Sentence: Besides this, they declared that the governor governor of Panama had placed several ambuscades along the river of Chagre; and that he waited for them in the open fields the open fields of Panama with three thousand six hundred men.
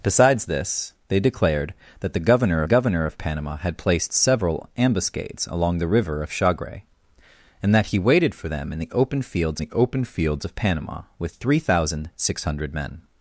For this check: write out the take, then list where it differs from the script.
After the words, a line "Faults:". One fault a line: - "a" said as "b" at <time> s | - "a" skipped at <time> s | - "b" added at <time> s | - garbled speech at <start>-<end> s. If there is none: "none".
Besides this, they declared that the governor governor of Panama had placed several ambuscades along the river of Chagre; and that he waited for them in the open fields the open fields of Panama with three thousand six hundred men.
Faults:
none